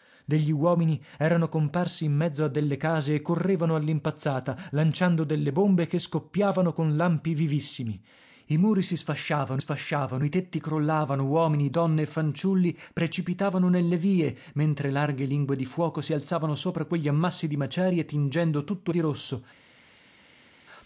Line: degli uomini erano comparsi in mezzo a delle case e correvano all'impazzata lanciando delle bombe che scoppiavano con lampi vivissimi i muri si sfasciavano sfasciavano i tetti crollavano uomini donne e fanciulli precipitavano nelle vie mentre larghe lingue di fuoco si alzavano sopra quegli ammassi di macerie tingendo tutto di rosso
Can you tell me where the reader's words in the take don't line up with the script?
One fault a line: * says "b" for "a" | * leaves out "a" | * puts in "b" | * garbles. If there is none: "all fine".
all fine